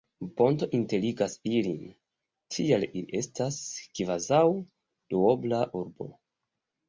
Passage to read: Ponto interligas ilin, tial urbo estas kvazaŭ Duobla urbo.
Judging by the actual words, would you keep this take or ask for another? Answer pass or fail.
fail